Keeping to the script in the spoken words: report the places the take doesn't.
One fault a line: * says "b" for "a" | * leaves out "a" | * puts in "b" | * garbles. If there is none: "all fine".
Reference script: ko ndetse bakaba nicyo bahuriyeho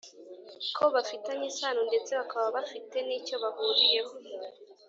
* puts in "bafitanye isano"
* puts in "bafite"